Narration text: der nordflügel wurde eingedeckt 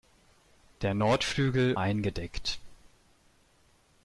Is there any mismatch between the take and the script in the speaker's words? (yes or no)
yes